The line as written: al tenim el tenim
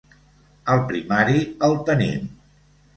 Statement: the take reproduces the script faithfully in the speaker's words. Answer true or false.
false